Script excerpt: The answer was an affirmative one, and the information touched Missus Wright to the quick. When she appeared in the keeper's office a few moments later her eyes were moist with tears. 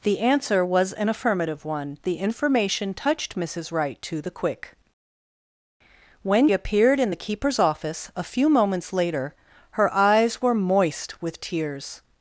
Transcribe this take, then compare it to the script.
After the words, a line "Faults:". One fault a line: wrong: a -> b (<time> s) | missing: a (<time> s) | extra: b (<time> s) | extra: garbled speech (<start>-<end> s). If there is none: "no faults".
The answer was an affirmative one, the information touched Missus Wright to the quick. When appeared in the keeper's office a few moments later her eyes were moist with tears.
Faults:
missing: and (2.0 s)
missing: she (6.5 s)